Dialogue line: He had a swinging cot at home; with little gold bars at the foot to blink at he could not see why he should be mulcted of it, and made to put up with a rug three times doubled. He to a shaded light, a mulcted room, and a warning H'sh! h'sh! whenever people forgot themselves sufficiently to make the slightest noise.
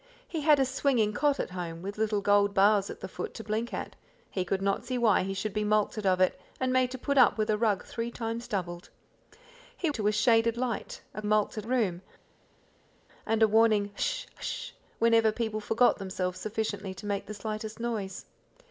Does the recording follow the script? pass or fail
pass